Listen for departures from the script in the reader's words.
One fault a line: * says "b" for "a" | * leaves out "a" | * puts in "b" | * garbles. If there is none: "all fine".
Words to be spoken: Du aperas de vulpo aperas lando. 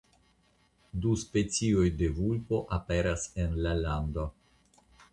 * says "specioj" for "aperas"
* puts in "en la"